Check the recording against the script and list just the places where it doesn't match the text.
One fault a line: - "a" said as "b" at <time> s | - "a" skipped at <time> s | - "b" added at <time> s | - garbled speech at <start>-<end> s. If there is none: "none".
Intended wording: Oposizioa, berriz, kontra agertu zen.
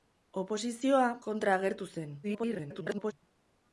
- "berriz" skipped at 1.0 s
- garbled speech at 2.2-3.1 s